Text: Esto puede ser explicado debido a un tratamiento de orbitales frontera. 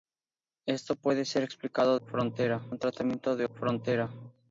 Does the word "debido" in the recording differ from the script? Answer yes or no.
yes